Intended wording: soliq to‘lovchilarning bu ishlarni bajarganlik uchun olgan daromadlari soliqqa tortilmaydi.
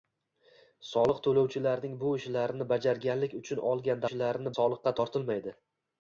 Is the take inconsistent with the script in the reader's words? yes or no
yes